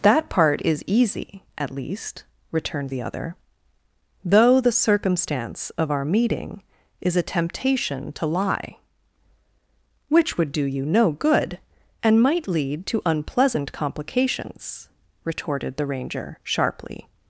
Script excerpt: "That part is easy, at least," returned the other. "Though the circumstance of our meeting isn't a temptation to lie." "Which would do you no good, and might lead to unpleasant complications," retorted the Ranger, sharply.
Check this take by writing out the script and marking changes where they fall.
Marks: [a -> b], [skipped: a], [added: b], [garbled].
"That part is easy, at least," returned the other. "Though the circumstance of our meeting [isn't -> is] a temptation to lie." "Which would do you no good, and might lead to unpleasant complications," retorted the Ranger, sharply.